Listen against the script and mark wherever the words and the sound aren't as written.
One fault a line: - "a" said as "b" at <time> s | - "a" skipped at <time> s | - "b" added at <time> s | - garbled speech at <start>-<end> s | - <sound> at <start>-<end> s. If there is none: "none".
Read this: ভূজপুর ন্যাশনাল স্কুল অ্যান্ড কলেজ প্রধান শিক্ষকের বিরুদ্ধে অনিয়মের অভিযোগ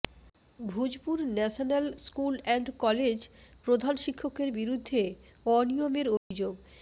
- dropout at 6.2-6.3 s